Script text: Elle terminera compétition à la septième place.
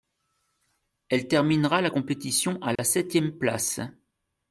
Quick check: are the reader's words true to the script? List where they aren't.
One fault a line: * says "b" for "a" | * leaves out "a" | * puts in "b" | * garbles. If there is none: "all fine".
* puts in "la"